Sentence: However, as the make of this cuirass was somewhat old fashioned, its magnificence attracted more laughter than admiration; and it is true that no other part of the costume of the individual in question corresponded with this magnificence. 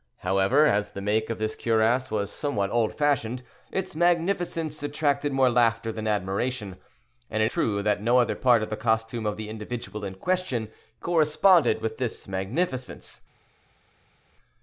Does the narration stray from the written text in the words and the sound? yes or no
yes